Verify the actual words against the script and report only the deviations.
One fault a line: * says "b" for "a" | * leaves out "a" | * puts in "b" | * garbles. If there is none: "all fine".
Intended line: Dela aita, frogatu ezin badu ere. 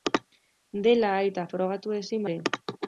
* leaves out "badu"